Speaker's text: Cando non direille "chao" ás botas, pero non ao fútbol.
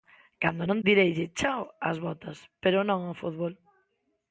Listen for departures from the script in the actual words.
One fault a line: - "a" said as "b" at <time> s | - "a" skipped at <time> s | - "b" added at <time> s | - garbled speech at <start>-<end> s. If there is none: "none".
none